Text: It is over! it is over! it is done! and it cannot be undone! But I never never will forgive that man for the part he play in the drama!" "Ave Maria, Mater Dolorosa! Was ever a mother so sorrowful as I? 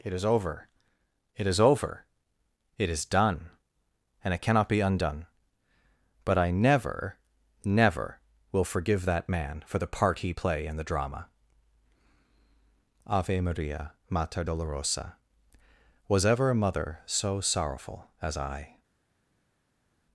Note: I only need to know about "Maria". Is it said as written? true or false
true